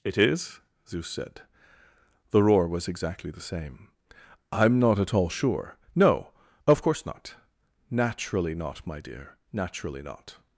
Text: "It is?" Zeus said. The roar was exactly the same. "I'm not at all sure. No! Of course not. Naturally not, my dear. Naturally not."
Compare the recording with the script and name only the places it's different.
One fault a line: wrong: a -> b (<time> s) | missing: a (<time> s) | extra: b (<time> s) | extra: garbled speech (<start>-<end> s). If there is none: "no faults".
no faults